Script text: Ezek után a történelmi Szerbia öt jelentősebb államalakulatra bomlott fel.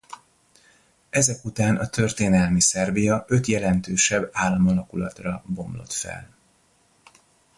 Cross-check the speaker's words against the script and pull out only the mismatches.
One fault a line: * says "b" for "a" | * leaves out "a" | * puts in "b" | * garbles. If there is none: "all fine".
all fine